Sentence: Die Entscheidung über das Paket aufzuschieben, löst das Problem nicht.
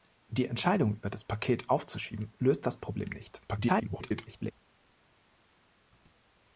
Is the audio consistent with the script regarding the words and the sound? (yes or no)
no